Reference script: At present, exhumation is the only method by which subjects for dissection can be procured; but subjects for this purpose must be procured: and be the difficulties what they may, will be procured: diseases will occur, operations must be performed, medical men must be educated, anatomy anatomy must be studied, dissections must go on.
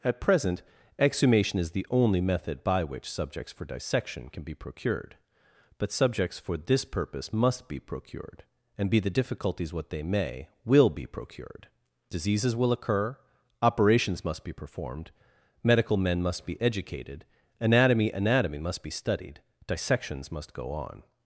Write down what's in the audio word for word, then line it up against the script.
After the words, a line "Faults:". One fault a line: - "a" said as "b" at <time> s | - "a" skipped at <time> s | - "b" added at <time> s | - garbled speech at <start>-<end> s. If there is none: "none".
At present, exhumation is the only method by which subjects for dissection can be procured; but subjects for this purpose must be procured: and be the difficulties what they may, will be procured: diseases will occur, operations must be performed, medical men must be educated, anatomy anatomy must be studied, dissections must go on.
Faults:
none